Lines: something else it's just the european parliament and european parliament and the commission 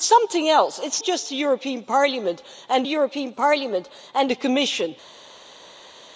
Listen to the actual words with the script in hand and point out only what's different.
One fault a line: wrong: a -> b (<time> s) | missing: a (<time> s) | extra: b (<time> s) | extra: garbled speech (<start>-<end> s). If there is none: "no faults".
no faults